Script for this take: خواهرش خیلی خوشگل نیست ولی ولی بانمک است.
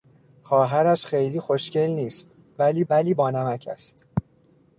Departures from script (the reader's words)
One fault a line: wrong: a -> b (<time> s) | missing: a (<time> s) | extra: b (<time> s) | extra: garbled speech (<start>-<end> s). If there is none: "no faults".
no faults